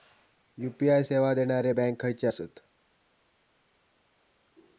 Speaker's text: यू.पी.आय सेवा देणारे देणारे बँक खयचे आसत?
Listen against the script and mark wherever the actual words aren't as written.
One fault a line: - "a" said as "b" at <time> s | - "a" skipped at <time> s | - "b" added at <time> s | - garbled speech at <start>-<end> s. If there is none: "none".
- "देणारे" skipped at 1.7 s